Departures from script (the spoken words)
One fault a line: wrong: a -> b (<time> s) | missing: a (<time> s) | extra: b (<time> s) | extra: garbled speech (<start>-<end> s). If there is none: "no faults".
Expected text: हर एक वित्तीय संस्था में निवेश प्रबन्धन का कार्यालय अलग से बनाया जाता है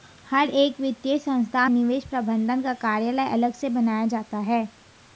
missing: में (1.7 s)